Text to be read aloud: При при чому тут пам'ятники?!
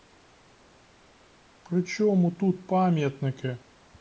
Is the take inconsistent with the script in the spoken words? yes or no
yes